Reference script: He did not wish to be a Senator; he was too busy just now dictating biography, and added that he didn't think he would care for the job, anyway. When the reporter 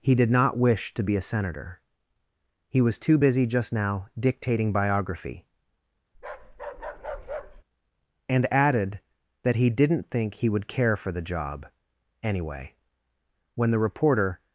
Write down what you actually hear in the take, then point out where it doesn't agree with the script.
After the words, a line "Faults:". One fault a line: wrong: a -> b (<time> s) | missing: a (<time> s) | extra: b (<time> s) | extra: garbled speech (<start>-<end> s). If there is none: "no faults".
He did not wish to be a Senator; he was too busy just now dictating biography, and added that he didn't think he would care for the job, anyway. When the reporter
Faults:
no faults